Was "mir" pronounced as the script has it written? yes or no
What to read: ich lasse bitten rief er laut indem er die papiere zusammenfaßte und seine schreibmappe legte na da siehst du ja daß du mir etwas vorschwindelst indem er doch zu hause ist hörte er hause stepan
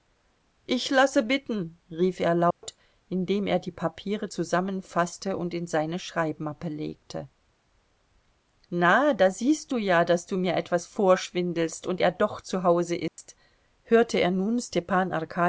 yes